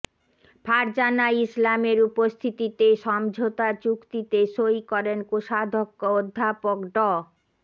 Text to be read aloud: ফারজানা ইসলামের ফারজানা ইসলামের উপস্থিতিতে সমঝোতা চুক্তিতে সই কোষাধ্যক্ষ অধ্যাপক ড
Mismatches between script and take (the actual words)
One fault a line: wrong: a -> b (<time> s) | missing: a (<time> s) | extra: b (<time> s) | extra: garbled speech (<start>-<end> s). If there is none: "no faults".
missing: ফারজানা ইসলামের (2.0 s)
extra: করেন (4.9 s)